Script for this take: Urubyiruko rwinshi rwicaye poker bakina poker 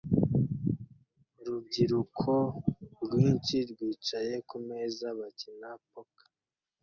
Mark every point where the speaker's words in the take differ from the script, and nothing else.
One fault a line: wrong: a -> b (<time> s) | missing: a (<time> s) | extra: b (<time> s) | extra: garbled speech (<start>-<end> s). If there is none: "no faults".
wrong: poker -> kumeza (4.5 s)